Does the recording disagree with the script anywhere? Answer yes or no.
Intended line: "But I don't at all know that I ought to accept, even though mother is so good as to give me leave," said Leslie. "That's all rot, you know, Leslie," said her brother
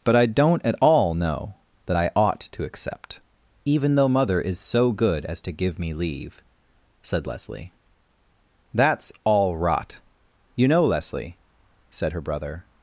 no